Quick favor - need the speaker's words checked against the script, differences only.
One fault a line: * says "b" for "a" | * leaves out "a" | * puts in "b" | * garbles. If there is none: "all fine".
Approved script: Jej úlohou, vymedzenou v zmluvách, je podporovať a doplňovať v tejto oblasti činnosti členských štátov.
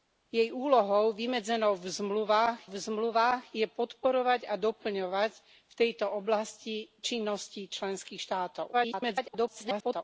* puts in "v zmluvách"
* garbles